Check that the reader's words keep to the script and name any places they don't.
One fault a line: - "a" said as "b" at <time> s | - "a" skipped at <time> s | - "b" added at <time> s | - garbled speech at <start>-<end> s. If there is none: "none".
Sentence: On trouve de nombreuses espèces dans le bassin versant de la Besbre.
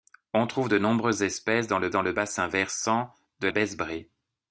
- "dans le" added at 1.9 s
- "la" skipped at 3.5 s